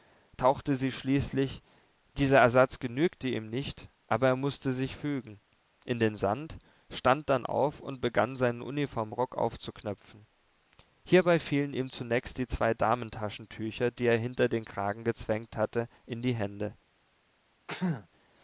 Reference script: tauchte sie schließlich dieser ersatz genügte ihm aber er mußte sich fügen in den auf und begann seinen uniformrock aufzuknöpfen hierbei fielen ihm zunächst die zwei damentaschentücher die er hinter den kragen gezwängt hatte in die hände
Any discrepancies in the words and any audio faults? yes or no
yes